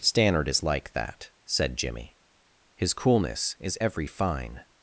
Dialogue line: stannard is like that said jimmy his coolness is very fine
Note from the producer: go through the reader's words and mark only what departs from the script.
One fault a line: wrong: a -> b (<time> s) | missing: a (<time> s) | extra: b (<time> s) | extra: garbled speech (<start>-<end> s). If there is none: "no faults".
wrong: very -> every (3.8 s)